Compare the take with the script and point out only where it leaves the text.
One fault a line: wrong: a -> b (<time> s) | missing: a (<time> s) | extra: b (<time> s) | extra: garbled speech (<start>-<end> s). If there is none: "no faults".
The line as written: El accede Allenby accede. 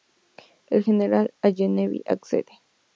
wrong: accede -> general (0.8 s)